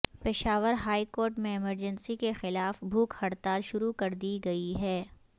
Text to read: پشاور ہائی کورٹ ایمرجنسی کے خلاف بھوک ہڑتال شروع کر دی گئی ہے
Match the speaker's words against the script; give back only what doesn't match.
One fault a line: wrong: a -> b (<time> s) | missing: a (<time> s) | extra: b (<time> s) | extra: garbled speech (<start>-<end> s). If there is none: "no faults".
extra: میں (1.4 s)